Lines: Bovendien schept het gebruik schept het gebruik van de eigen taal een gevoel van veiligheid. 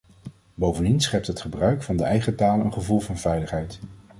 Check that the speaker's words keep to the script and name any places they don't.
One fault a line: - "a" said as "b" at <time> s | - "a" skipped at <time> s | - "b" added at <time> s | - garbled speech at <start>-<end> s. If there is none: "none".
- "schept het gebruik" skipped at 1.8 s